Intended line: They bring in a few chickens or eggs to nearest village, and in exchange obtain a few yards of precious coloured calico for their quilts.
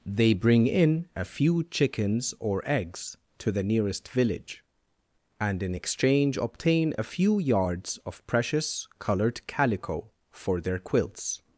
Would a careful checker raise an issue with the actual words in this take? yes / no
yes